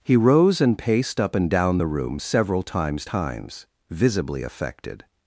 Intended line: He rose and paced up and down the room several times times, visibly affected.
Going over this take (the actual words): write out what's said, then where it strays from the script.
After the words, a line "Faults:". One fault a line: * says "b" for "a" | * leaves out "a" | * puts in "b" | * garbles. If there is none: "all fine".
He rose and paced up and down the room several times times, visibly affected.
Faults:
all fine